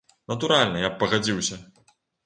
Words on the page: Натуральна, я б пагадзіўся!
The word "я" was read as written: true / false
true